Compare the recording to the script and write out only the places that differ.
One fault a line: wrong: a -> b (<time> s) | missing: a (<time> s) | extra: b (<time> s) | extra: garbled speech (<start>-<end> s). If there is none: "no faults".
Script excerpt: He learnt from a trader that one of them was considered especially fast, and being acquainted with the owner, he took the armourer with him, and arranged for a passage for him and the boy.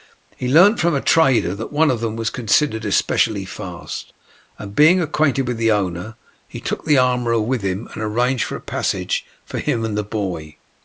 no faults